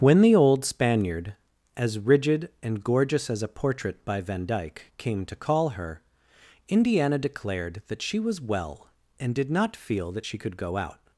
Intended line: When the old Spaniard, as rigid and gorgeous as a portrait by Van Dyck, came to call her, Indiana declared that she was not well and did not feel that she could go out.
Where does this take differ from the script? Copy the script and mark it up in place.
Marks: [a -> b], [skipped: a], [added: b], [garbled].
When the old Spaniard, as rigid and gorgeous as a portrait by Van Dyck, came to call her, Indiana declared that she was [skipped: not] well and did not feel that she could go out.